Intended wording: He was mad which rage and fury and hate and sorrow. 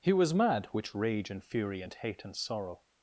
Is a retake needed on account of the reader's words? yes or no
no